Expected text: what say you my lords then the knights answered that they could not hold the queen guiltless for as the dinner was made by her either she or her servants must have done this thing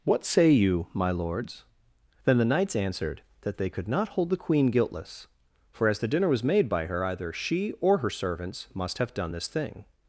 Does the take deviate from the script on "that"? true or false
false